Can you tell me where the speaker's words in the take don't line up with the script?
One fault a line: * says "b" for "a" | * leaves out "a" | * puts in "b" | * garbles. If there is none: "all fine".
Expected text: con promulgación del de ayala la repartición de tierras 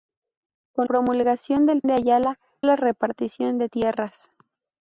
all fine